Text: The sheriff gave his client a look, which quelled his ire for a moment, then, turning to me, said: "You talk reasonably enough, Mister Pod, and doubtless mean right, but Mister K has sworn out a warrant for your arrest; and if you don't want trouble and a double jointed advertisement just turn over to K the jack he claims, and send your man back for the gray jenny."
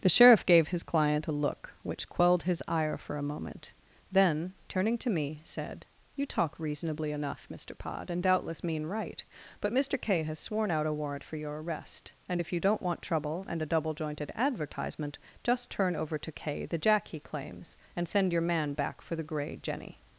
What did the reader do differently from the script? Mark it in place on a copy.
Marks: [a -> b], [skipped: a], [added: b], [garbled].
The sheriff gave his client a look, which quelled his ire for a moment, then, turning to me, said: "You talk reasonably enough, Mister Pod, and doubtless mean right, but Mister K has sworn out a warrant for your arrest; and if you don't want trouble and a double jointed advertisement just turn over to K the jack he claims, and send your man back for the gray jenny."